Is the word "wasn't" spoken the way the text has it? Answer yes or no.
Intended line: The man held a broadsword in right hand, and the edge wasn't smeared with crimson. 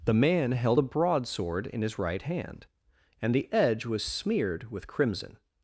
no